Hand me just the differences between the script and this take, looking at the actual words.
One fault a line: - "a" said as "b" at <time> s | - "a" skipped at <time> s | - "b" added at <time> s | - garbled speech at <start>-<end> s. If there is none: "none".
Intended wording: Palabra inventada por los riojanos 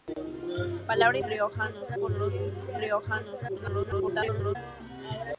- "inventada" said as "riojanos" at 1.3 s
- garbled speech at 3.5-4.6 s